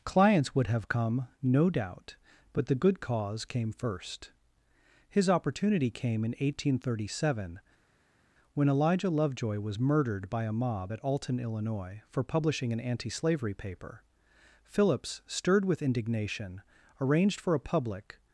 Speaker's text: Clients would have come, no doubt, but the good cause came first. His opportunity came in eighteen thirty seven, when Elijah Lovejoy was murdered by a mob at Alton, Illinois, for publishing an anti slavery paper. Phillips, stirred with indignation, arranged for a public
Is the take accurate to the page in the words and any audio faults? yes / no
yes